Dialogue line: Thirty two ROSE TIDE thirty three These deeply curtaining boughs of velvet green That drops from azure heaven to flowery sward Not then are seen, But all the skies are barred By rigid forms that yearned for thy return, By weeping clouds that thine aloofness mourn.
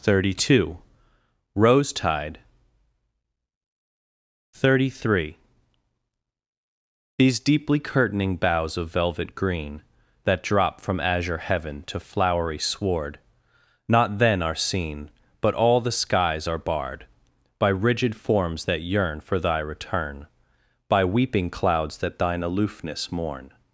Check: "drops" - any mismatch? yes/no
yes